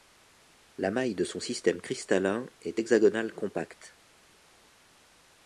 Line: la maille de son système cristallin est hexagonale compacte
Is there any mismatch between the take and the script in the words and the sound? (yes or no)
no